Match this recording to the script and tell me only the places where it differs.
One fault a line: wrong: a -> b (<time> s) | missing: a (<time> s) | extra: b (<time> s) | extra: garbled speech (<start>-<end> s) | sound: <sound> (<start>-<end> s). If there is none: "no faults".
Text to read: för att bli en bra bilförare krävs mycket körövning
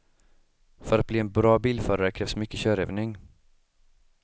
no faults